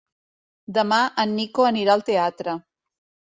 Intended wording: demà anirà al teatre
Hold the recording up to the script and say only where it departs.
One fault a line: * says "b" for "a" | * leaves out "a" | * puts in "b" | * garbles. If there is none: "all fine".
* puts in "en nico"